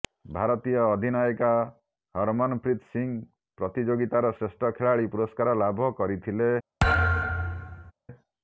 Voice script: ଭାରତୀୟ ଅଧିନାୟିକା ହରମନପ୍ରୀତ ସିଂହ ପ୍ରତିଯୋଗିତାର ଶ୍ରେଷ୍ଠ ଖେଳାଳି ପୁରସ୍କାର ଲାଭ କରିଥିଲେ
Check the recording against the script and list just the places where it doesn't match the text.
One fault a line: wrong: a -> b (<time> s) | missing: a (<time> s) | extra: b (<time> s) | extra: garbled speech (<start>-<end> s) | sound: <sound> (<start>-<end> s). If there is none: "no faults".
sound: thud (6.8-7.9 s)